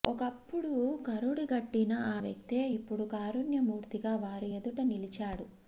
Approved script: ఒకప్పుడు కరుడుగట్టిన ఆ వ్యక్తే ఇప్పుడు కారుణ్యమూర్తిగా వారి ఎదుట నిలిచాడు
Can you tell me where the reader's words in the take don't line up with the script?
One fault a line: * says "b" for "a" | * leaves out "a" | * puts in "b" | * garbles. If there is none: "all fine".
all fine